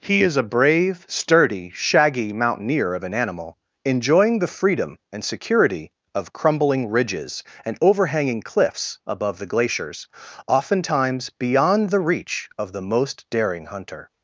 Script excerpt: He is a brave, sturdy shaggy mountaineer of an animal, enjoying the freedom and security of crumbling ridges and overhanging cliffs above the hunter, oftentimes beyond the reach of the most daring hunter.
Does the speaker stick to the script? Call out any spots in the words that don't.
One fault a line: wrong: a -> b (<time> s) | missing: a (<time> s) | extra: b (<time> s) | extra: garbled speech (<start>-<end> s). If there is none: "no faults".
wrong: hunter -> glaciers (9.5 s)